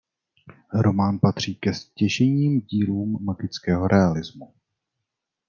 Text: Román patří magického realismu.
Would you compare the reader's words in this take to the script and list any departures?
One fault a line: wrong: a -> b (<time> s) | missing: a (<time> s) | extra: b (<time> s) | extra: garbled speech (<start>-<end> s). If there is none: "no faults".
extra: ke stěžejním dílům (1.5 s)